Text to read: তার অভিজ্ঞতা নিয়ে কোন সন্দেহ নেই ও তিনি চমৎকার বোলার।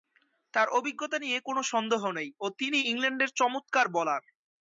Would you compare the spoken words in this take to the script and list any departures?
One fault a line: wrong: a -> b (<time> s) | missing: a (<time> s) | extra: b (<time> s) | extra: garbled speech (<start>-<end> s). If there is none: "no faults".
extra: ইংল্যান্ডের (2.9 s)